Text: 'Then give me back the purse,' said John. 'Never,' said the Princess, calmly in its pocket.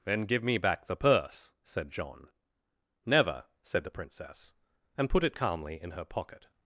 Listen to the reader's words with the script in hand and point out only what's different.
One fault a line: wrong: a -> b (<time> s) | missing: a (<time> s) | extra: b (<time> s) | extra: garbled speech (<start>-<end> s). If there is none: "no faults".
extra: and put it (5.0 s)
wrong: its -> her (5.9 s)